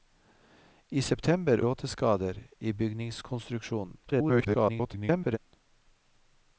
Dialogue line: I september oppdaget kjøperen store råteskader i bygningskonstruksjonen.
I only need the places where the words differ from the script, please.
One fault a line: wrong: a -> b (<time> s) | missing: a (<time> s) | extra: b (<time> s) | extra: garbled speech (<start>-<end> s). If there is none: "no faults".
missing: oppdaget kjøperen store (1.6 s)
extra: garbled speech (4.0-5.4 s)